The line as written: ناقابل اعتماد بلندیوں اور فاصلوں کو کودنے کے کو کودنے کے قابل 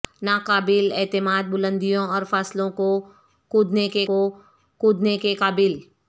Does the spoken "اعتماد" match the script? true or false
true